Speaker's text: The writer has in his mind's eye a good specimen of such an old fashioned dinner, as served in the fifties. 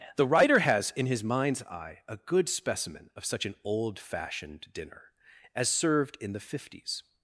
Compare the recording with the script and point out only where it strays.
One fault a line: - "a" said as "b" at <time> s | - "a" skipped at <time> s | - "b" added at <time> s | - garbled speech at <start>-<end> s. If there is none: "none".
none